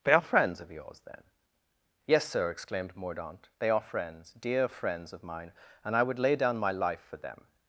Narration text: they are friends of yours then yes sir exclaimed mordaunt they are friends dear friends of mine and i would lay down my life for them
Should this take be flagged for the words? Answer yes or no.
no